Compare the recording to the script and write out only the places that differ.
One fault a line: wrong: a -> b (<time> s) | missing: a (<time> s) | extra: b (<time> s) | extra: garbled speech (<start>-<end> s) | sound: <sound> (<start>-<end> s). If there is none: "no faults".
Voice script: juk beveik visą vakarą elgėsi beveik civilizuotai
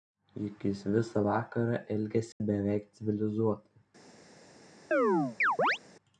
wrong: beveik -> jis (0.7 s)
sound: dropout (2.3-2.4 s)
sound: chirp (4.9-5.8 s)